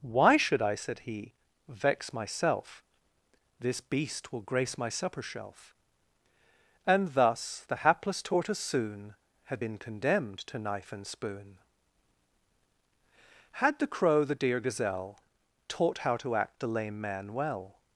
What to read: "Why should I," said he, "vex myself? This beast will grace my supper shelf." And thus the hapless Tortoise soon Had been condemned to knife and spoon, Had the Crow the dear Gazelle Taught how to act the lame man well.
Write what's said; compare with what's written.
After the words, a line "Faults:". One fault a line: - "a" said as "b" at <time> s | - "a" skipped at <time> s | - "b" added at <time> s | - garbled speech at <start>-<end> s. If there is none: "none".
"Why should I," said he, "vex myself? This beast will grace my supper shelf." And thus the hapless Tortoise soon Had been condemned to knife and spoon, Had the Crow the dear Gazelle Taught how to act the lame man well.
Faults:
none